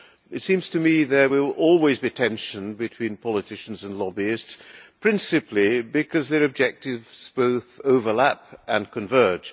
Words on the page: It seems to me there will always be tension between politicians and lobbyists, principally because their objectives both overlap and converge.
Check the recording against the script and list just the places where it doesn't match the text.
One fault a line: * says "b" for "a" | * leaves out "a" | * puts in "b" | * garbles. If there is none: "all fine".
all fine